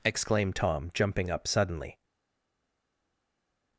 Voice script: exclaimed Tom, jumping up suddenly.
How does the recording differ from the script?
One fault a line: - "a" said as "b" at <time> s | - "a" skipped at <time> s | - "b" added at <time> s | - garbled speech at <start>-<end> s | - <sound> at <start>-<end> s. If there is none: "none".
none